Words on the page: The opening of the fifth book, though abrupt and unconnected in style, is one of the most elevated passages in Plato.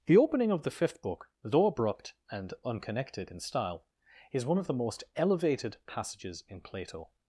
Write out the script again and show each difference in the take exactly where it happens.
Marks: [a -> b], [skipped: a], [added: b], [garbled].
The opening of the fifth book, though abrupt and unconnected in style, is one of the most elevated passages in Plato.